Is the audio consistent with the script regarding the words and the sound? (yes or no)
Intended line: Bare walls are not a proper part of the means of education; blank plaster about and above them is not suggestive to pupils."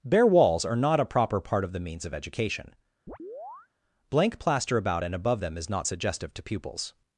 no